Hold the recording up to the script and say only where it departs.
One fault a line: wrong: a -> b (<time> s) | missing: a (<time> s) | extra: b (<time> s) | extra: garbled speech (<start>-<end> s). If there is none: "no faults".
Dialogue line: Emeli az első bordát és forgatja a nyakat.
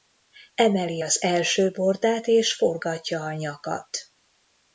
no faults